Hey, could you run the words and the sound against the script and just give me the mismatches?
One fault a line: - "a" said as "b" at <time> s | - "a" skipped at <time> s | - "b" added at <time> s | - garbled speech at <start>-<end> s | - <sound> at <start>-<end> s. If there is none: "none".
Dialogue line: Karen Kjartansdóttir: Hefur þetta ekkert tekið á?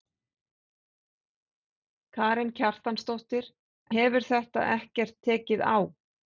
none